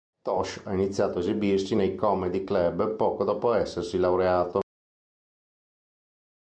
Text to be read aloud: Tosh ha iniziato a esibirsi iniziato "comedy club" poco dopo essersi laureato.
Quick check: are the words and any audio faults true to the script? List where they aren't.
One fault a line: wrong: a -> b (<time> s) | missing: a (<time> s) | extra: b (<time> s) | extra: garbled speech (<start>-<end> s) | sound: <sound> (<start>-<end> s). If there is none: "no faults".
wrong: iniziato -> nei (1.7 s)